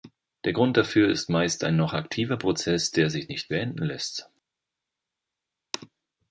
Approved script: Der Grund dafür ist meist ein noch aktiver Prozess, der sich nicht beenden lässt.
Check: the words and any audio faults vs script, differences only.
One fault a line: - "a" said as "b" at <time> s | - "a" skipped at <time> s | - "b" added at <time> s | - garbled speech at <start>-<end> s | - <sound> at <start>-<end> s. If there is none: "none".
none